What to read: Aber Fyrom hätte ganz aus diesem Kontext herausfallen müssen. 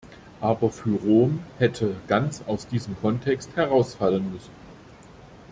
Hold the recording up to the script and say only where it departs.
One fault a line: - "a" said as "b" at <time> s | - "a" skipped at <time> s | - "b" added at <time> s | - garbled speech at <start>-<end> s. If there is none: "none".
none